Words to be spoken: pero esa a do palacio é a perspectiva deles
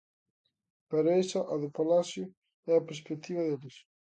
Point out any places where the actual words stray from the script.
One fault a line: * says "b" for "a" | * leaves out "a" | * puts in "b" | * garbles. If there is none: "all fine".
all fine